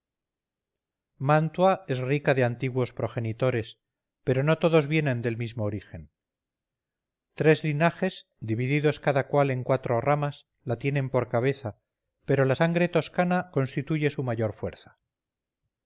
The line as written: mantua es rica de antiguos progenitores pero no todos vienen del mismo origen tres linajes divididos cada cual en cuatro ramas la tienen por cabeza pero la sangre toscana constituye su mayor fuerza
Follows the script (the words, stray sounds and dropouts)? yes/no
yes